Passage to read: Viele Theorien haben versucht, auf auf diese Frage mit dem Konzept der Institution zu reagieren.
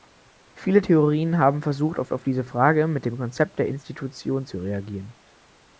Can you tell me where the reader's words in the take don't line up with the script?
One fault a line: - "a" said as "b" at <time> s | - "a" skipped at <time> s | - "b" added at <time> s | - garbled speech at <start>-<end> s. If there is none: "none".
none